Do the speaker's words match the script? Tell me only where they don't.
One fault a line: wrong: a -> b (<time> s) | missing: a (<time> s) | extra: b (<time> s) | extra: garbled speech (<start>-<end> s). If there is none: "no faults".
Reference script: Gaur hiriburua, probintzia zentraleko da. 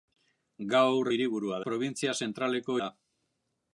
no faults